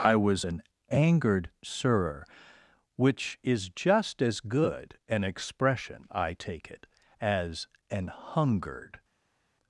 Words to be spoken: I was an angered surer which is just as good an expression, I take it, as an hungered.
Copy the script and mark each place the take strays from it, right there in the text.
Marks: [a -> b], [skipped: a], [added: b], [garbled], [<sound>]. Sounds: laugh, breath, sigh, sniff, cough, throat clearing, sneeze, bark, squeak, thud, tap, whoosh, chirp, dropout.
I was an angered surer which is just as good an expression, I take it, as an hungered.